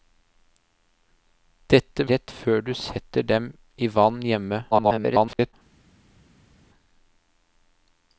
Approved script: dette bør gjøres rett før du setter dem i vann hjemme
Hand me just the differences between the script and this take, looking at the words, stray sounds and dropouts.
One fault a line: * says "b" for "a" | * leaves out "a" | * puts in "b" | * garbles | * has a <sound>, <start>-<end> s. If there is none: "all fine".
* leaves out "bør gjøres"
* garbles